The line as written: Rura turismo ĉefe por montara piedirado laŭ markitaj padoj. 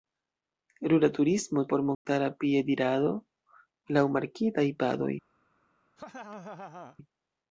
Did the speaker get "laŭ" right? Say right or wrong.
right